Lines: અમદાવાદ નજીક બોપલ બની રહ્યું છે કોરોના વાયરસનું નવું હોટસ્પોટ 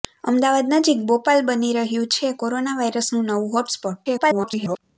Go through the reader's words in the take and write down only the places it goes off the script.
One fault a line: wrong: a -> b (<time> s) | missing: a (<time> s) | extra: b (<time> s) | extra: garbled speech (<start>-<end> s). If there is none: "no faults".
extra: garbled speech (4.0-4.8 s)